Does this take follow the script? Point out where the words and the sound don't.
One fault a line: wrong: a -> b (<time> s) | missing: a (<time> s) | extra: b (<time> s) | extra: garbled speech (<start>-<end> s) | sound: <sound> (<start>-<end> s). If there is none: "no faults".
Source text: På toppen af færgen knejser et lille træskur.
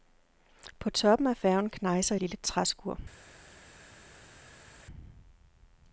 missing: et (2.1 s)